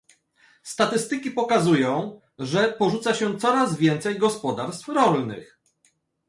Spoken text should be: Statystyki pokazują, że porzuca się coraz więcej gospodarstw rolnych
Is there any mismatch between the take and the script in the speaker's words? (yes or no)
no